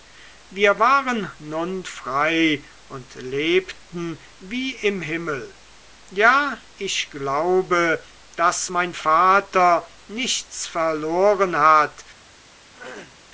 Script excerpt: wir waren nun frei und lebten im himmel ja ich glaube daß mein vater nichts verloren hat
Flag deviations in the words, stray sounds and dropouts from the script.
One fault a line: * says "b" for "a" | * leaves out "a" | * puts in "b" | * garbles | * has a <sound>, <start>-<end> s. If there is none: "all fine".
* puts in "wie"
* has a throat clearing, 12.7-13.2 s